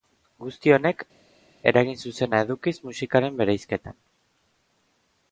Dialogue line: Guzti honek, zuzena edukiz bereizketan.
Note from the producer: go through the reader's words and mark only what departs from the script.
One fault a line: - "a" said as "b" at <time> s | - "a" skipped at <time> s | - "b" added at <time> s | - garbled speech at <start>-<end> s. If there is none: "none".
- "eragin" added at 1.7 s
- "musikaren" added at 2.9 s